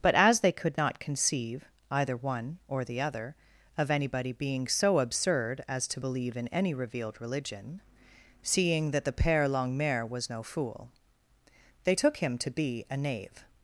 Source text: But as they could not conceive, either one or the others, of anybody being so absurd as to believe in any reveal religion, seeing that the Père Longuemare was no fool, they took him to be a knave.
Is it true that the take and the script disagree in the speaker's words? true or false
true